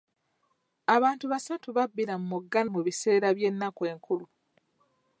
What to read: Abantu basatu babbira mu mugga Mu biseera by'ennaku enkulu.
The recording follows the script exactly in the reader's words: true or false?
true